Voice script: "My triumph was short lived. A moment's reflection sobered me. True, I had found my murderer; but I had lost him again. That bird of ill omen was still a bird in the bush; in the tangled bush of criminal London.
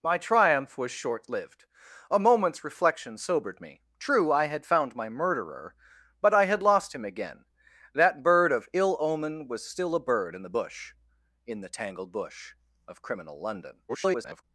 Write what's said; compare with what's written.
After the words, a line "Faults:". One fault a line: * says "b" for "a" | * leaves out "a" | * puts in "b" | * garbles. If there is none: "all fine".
"My triumph was short lived. A moment's reflection sobered me. True, I had found my murderer; but I had lost him again. That bird of ill omen was still a bird in the bush; in the tangled bush of criminal London. [garbled]
Faults:
* garbles